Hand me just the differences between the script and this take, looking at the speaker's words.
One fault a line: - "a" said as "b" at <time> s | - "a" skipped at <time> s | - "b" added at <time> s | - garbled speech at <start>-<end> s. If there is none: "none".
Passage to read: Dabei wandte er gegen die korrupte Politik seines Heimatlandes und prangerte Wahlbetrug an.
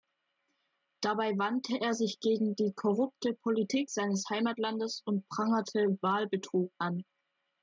- "sich" added at 1.9 s